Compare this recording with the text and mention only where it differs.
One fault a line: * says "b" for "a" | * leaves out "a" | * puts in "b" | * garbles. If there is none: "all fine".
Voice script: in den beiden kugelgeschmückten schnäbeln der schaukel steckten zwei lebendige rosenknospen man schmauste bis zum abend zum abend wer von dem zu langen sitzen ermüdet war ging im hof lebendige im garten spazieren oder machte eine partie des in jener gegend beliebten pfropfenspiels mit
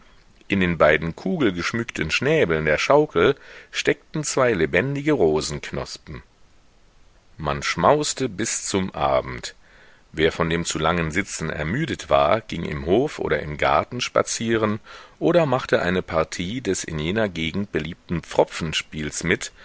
* leaves out "zum abend"
* says "oder" for "lebendige"